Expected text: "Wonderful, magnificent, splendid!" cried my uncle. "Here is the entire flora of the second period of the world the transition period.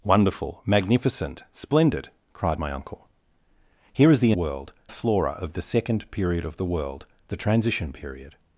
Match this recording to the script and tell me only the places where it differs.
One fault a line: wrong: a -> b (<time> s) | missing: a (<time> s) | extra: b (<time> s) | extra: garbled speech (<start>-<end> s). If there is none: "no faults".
wrong: entire -> world (4.3 s)